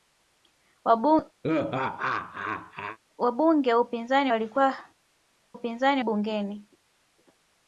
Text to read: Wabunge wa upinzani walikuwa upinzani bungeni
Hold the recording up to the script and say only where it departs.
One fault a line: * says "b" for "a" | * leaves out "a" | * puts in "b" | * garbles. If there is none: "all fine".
all fine